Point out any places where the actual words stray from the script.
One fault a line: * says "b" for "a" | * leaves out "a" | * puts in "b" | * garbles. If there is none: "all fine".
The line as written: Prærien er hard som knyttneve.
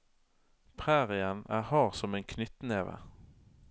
* puts in "en"